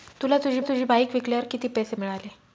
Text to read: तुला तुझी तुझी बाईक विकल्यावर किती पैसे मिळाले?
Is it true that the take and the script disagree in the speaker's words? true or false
false